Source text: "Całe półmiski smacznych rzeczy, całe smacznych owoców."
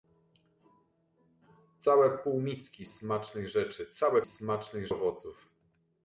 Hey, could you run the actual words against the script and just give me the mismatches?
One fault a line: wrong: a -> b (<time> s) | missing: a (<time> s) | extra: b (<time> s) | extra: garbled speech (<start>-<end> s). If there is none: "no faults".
no faults